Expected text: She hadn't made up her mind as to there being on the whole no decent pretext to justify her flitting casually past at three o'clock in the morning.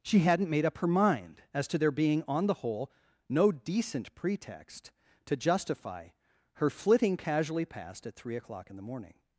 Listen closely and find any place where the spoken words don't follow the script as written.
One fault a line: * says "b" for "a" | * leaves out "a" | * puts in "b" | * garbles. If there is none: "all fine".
all fine